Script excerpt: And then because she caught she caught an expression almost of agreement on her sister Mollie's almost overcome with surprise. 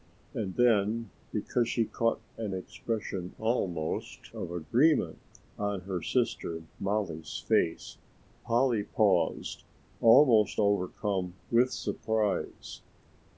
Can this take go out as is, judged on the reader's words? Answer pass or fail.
fail